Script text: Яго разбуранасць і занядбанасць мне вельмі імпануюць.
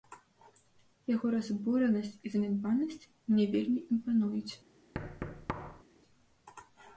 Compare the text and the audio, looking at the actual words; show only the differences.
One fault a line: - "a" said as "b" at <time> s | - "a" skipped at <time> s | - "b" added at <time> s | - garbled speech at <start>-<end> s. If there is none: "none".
none